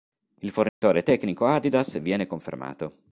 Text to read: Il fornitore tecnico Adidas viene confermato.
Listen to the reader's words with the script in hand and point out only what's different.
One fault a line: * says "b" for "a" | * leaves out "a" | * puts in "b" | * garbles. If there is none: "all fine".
all fine